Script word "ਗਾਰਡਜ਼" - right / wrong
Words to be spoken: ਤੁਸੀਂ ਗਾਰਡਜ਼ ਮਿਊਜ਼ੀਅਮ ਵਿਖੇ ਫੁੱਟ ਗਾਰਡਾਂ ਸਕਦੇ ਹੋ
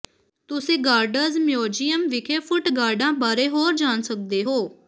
right